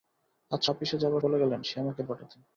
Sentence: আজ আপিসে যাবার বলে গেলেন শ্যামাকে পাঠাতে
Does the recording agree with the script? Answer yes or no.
yes